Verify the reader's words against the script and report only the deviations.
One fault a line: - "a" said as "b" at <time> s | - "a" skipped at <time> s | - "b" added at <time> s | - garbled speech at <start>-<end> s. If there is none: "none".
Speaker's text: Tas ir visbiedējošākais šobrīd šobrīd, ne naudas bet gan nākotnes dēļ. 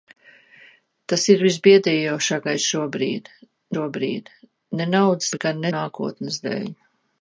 none